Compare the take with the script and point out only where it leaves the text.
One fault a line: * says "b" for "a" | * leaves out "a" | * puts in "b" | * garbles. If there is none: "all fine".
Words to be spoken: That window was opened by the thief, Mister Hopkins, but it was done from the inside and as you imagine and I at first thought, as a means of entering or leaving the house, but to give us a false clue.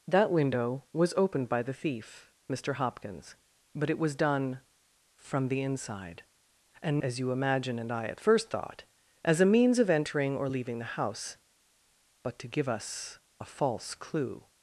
all fine